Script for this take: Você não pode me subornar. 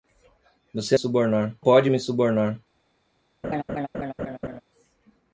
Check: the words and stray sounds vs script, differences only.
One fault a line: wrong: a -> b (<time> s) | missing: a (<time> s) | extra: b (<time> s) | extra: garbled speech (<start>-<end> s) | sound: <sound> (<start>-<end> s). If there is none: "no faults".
wrong: não -> subornar (0.9 s)
sound: laugh (3.4-4.6 s)